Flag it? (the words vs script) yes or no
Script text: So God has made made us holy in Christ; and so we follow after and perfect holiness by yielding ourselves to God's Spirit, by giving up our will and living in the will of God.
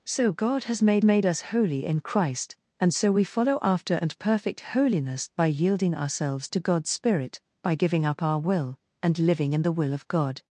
no